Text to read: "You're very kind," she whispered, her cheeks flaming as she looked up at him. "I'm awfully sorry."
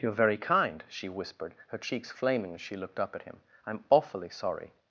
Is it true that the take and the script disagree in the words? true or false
false